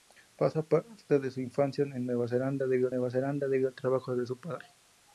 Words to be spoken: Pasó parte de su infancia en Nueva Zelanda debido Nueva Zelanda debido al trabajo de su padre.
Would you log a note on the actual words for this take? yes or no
no